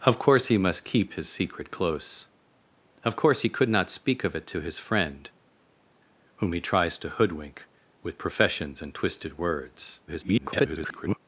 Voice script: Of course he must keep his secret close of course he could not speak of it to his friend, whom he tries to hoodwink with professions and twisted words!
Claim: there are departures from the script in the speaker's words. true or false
true